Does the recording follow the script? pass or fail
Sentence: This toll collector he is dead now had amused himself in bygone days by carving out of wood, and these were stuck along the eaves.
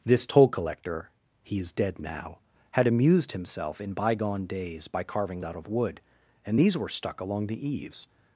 pass